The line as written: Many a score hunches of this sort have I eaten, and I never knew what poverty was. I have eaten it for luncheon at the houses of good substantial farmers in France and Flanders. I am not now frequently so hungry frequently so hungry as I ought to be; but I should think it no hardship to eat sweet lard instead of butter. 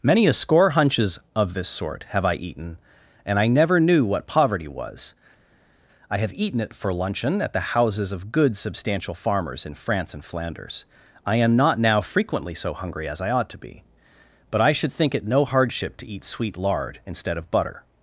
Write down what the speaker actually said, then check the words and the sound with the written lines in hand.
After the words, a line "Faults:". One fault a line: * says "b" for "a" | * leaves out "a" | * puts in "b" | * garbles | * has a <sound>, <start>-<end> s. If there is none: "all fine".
Many a score hunches of this sort have I eaten, and I never knew what poverty was. I have eaten it for luncheon at the houses of good substantial farmers in France and Flanders. I am not now frequently so hungry as I ought to be; but I should think it no hardship to eat sweet lard instead of butter.
Faults:
* leaves out "frequently so hungry"